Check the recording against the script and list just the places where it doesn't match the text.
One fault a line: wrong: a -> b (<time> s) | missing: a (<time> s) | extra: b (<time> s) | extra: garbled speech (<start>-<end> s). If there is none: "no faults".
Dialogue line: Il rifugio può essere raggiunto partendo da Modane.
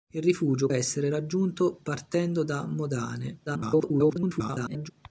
missing: può (0.7 s)
extra: garbled speech (3.5-4.9 s)